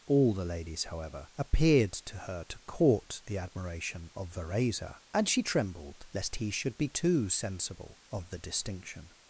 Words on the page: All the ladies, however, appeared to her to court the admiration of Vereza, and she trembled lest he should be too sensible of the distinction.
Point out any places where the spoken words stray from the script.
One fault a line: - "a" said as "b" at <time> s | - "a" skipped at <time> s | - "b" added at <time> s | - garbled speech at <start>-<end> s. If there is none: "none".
none